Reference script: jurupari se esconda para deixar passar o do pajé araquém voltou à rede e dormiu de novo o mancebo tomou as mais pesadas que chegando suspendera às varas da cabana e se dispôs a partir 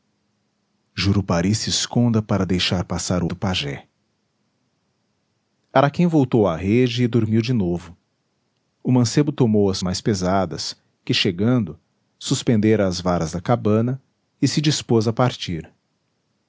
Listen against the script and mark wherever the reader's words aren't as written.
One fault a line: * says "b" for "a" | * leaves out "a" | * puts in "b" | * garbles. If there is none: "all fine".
all fine